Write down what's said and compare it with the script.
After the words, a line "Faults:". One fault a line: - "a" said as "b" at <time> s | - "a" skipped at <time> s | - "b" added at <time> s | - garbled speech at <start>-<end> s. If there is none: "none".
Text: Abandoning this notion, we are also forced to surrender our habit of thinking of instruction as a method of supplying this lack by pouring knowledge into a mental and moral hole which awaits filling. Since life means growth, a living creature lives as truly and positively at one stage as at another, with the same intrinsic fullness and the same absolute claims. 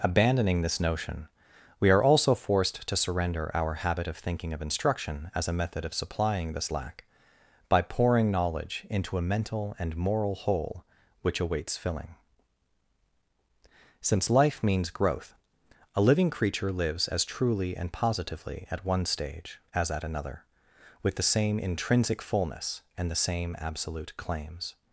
Abandoning this notion, we are also forced to surrender our habit of thinking of instruction as a method of supplying this lack by pouring knowledge into a mental and moral hole which awaits filling. Since life means growth, a living creature lives as truly and positively at one stage as at another, with the same intrinsic fullness and the same absolute claims.
Faults:
none